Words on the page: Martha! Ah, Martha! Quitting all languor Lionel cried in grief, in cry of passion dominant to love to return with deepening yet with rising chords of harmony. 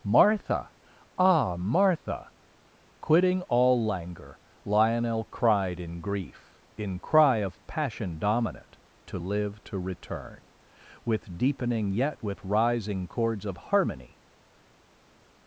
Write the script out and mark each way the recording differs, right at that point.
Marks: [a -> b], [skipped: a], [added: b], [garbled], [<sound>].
Martha! Ah, Martha! Quitting all languor Lionel cried in grief, in cry of passion dominant to [love -> live] to return with deepening yet with rising chords of harmony.